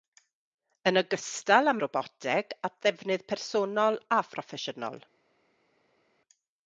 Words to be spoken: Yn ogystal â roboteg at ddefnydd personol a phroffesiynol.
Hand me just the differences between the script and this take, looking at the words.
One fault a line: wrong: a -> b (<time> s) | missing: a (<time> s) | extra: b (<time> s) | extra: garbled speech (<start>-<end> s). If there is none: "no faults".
no faults